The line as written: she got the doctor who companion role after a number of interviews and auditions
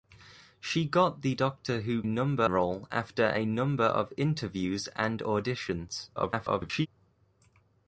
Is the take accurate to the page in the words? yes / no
no